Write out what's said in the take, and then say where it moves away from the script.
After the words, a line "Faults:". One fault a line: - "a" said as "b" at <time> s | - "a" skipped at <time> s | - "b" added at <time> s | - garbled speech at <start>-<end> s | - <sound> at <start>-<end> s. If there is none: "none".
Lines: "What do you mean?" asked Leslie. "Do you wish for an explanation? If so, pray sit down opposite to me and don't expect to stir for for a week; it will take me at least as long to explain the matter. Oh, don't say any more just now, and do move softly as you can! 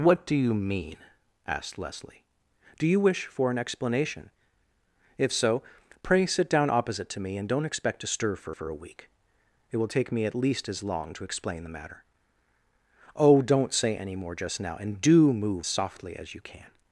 "What do you mean?" asked Leslie. "Do you wish for an explanation? If so, pray sit down opposite to me and don't expect to stir for for a week; it will take me at least as long to explain the matter. Oh, don't say any more just now, and do move softly as you can!
Faults:
none